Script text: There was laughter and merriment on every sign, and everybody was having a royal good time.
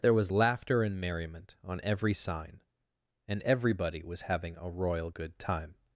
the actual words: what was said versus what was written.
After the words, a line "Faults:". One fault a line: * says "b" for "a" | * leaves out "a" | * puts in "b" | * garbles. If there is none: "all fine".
There was laughter and merriment on every sign, and everybody was having a royal good time.
Faults:
all fine